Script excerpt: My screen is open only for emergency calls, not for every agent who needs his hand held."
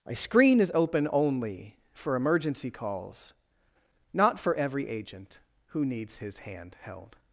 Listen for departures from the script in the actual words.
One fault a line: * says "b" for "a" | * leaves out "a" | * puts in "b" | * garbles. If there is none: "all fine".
all fine